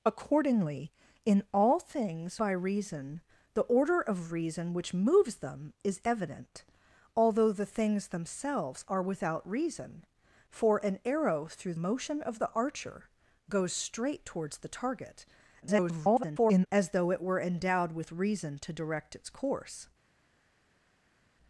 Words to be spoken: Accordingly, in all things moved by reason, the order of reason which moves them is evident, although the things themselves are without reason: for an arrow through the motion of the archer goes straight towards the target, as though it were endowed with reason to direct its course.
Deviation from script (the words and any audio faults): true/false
true